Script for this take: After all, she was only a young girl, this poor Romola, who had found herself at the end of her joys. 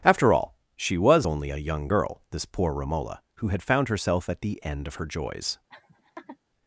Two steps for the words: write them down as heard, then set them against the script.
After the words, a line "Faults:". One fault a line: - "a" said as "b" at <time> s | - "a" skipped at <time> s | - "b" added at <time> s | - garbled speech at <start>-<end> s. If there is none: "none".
After all, she was only a young girl, this poor Romola, who had found herself at the end of her joys.
Faults:
none